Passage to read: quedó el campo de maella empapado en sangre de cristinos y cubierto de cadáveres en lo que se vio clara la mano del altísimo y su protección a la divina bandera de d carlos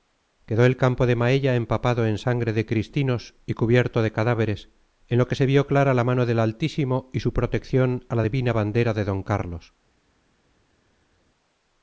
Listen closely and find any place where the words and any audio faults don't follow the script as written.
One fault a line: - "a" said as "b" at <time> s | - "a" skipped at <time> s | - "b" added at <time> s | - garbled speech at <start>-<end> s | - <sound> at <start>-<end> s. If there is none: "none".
none